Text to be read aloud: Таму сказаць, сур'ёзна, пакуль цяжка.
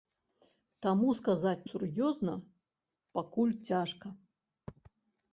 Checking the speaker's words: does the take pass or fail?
pass